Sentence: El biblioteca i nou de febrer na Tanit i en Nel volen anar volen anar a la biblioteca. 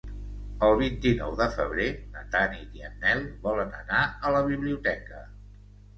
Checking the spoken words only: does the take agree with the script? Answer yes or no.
no